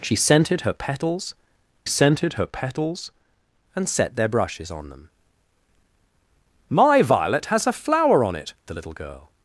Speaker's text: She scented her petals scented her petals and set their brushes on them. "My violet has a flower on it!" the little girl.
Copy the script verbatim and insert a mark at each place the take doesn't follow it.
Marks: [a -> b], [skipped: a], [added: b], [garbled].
She scented her petals scented her petals and set their brushes on them. "My violet has a flower on it!" the little girl.